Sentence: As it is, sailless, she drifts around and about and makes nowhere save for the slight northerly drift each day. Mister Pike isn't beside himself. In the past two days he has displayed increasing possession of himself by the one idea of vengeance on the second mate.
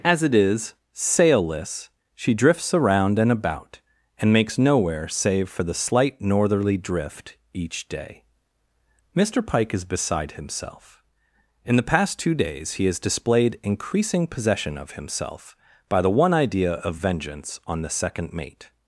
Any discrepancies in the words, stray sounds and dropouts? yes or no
yes